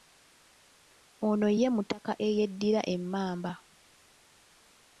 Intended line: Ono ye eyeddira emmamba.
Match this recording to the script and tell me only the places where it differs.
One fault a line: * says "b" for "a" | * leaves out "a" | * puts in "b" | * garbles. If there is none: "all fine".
* puts in "mutaka"